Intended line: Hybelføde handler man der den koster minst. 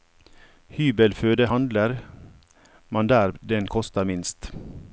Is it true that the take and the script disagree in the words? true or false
false